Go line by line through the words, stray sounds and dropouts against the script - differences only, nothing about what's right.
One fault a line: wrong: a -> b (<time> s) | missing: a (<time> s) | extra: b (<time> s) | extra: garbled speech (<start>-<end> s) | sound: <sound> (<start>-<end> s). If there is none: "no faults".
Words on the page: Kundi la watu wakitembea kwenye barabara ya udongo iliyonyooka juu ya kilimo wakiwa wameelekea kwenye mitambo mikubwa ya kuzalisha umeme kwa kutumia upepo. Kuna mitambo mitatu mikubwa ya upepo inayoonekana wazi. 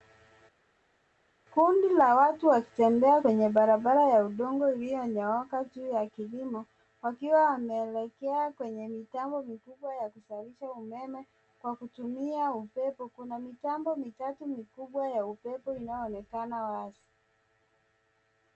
no faults